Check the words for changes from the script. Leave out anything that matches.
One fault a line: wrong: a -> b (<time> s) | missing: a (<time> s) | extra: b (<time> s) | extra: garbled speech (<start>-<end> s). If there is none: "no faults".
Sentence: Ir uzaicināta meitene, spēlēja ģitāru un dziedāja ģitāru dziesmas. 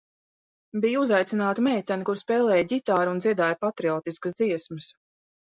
wrong: Ir -> Bija (0.8 s)
extra: kura (2.1 s)
wrong: ģitāru -> patriotiskas (3.7 s)